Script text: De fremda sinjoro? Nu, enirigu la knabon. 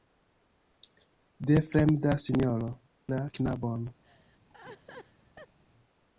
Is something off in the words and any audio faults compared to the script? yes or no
yes